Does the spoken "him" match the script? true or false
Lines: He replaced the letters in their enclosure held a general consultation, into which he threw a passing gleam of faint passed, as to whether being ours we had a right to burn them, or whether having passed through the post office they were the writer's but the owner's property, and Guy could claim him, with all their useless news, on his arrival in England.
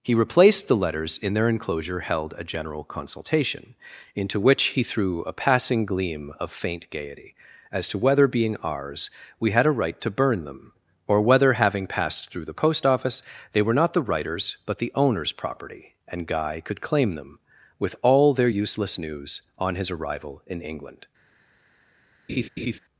false